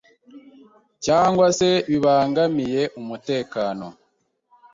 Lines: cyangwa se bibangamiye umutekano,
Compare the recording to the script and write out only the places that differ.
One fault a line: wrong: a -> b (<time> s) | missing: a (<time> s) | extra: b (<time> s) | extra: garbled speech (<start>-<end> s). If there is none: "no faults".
no faults